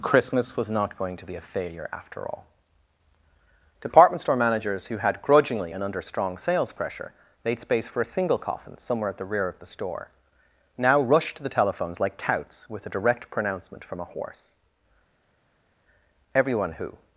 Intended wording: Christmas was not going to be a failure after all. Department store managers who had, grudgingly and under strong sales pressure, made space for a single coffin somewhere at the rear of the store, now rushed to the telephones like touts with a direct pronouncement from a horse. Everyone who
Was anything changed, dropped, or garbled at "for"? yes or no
no